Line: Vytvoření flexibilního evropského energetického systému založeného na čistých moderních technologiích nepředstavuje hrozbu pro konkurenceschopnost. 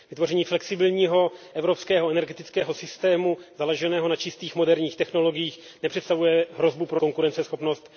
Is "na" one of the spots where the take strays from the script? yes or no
no